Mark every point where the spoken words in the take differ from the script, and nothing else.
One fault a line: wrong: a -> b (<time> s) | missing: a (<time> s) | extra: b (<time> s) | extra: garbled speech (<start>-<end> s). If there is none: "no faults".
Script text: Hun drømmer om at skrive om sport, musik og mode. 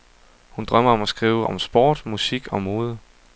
no faults